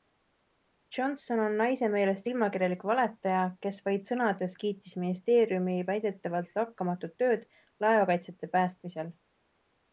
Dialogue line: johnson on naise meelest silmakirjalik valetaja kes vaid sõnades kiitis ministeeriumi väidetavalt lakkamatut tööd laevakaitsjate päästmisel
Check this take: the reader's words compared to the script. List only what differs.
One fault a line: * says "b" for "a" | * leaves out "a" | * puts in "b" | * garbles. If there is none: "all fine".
all fine